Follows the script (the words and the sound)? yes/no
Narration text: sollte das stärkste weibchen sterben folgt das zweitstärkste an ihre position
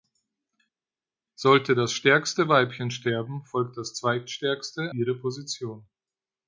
no